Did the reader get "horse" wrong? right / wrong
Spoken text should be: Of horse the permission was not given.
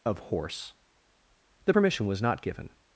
right